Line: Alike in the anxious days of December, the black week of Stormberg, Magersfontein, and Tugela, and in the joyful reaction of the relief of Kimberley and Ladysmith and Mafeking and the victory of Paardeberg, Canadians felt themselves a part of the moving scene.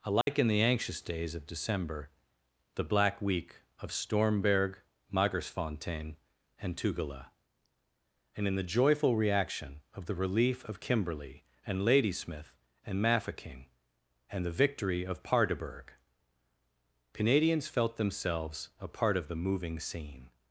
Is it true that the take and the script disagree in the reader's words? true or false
false